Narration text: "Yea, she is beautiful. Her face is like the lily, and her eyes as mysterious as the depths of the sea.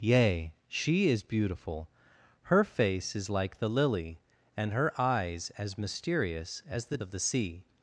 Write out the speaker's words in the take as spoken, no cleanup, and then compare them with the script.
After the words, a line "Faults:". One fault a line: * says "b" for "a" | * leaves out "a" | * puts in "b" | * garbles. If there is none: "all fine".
"Yea, she is beautiful. Her face is like the lily, and her eyes as mysterious as the of the sea.
Faults:
* leaves out "depths"